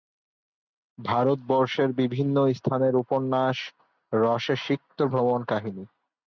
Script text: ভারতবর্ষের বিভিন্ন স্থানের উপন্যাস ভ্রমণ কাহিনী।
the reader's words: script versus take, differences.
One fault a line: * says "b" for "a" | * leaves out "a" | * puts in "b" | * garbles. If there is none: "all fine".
* puts in "রসে সিক্ত"